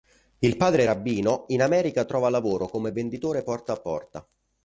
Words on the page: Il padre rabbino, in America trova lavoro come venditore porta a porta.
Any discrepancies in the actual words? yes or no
no